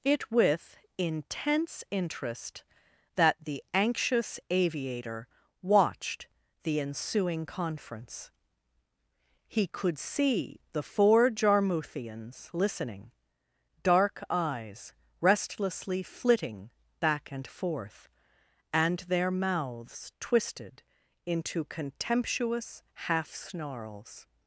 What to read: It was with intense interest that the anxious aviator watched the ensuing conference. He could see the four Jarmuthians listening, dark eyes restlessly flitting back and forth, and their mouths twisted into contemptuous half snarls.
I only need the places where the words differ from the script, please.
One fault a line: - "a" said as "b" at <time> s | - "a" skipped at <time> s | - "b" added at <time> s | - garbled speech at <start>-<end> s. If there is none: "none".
- "was" skipped at 0.3 s